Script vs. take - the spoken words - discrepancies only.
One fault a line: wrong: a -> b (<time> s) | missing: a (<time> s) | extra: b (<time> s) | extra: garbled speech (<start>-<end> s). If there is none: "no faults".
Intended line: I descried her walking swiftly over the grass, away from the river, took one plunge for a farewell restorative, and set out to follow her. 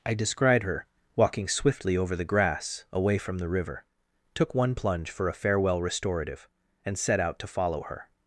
no faults